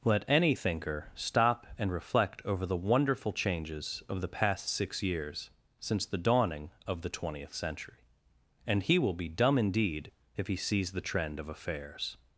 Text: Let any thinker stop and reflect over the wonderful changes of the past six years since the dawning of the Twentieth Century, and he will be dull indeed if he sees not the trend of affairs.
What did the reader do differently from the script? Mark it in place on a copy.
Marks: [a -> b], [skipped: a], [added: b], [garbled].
Let any thinker stop and reflect over the wonderful changes of the past six years since the dawning of the Twentieth Century, and he will be [dull -> dumb] indeed if he sees [skipped: not] the trend of affairs.